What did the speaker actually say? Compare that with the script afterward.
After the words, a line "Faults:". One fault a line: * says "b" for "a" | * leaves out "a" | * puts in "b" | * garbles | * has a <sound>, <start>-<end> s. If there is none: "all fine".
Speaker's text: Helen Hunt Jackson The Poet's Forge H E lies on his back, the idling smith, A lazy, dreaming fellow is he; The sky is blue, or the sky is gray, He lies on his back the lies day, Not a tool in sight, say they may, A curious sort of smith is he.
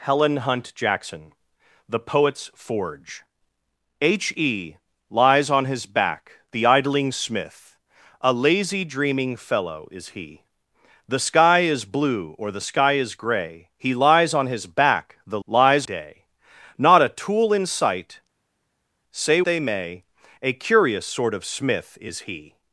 Helen Hunt Jackson The Poet's Forge H E lies on his back, the idling smith, A lazy, dreaming fellow is he; The sky is blue, or the sky is gray, He lies on his back the lies day, Not a tool in sight, say they may, A curious sort of smith is he.
Faults:
all fine